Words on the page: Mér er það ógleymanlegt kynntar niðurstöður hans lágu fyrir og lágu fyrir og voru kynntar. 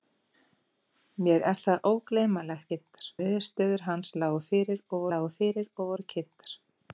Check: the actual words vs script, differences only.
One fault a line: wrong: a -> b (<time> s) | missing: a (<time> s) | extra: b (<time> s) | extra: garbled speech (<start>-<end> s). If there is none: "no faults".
no faults